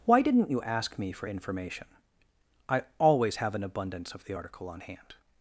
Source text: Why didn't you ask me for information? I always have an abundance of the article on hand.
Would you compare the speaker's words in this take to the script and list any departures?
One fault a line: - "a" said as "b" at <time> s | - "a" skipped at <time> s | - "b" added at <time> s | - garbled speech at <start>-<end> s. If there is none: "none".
none